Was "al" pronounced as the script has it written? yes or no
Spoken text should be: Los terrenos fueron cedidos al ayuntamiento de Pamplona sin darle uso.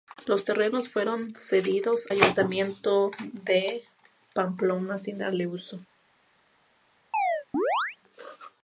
no